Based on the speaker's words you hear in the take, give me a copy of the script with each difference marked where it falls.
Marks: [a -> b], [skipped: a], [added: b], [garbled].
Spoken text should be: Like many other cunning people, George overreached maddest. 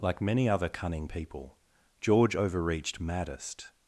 Like many other cunning people, George overreached maddest.